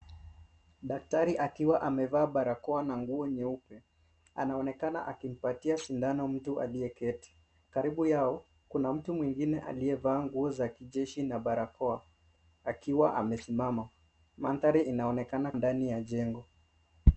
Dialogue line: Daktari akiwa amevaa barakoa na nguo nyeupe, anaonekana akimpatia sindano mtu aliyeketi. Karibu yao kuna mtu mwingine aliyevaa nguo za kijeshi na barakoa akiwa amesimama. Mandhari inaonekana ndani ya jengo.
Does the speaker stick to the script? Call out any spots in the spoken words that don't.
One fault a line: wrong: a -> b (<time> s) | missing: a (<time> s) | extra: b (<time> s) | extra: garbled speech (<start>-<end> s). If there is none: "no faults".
no faults